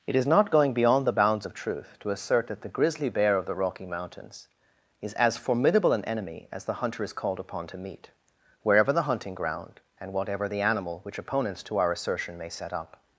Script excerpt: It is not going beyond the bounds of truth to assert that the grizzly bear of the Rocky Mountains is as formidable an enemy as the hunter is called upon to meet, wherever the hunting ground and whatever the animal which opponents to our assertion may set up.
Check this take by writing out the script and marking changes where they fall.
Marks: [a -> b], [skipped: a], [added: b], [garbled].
It is not going beyond the bounds of truth to assert that the grizzly bear of the Rocky Mountains is as formidable an enemy as the hunter is called upon to meet, wherever the hunting ground and whatever the animal which opponents to our assertion may set up.